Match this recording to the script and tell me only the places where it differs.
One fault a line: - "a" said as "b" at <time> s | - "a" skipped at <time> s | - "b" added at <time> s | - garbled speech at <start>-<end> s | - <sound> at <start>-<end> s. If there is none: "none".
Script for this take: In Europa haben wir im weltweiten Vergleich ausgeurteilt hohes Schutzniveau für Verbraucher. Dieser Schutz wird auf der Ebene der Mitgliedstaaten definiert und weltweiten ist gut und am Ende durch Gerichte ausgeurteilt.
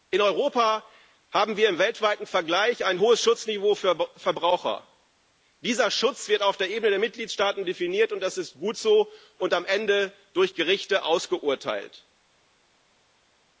- "ausgeurteilt" said as "ein" at 2.9 s
- "weltweiten" said as "das" at 8.2 s
- "so" added at 8.8 s